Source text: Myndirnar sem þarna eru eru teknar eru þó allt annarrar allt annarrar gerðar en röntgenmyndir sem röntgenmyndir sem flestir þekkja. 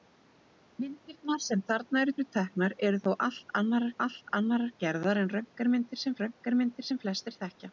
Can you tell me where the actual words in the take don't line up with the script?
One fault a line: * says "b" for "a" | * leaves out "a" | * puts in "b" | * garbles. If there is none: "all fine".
all fine